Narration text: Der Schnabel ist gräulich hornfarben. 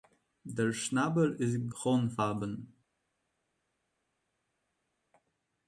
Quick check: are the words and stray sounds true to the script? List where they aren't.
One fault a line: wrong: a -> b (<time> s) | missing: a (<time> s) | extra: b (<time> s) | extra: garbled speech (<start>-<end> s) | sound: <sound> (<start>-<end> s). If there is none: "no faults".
missing: gräulich (1.7 s)